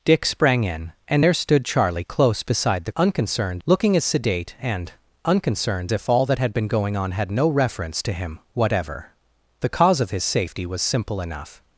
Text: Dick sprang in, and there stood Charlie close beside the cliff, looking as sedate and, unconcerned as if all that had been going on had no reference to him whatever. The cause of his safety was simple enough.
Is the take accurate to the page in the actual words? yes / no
no